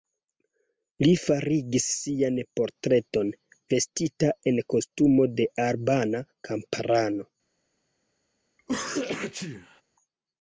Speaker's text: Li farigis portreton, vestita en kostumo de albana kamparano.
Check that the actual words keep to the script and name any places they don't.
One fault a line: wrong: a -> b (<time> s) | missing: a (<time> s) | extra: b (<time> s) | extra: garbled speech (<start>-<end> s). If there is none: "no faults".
extra: sian (2.0 s)